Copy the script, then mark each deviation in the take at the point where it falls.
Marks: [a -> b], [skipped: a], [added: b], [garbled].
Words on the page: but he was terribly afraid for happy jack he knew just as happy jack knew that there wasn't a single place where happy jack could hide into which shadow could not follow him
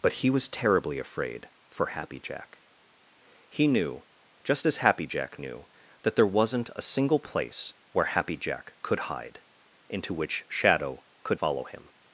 but he was terribly afraid for happy jack he knew just as happy jack knew that there wasn't a single place where happy jack could hide into which shadow could [skipped: not] follow him